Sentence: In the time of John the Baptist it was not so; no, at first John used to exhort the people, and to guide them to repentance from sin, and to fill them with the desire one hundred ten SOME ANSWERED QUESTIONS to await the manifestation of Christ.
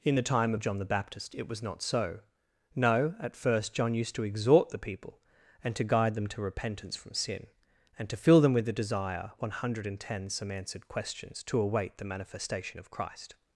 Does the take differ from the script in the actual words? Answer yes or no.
no